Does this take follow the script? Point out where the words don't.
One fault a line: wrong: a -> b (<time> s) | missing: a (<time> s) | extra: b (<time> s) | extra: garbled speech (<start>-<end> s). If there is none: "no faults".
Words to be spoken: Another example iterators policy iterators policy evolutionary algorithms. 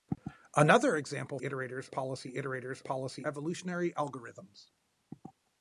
no faults